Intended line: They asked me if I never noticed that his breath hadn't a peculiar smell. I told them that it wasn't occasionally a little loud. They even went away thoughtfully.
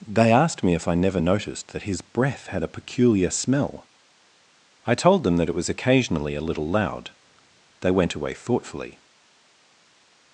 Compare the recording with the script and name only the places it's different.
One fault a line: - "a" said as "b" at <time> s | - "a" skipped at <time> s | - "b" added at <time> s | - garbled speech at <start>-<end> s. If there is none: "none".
- "hadn't" said as "had" at 2.5 s
- "wasn't" said as "was" at 5.5 s
- "even" skipped at 7.9 s